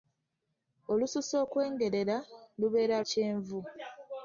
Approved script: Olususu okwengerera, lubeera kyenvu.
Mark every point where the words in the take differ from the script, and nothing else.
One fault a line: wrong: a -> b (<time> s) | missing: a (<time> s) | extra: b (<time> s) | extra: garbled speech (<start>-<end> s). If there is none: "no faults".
no faults